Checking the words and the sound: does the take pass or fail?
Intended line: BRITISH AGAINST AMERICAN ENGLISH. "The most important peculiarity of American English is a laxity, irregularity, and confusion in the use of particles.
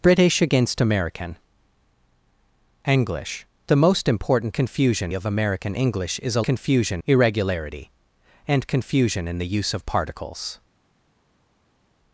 fail